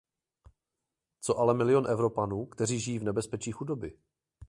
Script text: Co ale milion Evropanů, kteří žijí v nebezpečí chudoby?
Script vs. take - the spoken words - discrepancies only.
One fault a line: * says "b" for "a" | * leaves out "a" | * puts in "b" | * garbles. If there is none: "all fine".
all fine